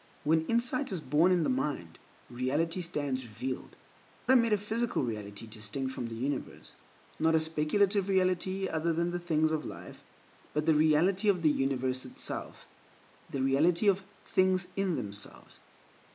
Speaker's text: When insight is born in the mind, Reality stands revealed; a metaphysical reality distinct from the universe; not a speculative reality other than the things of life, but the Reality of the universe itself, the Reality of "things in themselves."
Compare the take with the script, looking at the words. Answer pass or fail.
pass